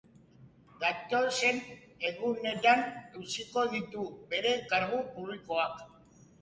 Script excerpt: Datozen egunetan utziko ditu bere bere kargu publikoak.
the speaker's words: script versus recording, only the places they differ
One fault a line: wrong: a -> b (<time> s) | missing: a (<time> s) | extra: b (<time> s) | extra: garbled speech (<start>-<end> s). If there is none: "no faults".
missing: bere (4.6 s)